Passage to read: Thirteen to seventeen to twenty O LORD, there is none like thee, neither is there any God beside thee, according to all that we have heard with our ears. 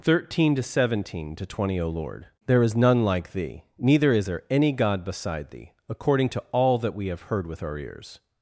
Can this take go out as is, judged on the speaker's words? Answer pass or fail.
pass